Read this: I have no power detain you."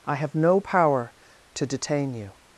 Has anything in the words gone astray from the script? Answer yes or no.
yes